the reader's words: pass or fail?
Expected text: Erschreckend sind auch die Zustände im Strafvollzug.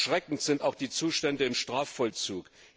pass